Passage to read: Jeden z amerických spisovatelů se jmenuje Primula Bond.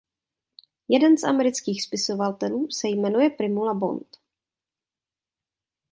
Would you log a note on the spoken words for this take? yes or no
no